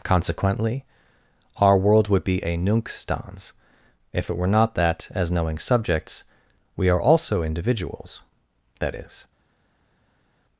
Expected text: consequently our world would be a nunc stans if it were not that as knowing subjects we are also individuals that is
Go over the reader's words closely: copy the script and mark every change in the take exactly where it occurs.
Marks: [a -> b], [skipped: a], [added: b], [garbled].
consequently our world would be a nunc stans if it were not that as knowing subjects we are also individuals that is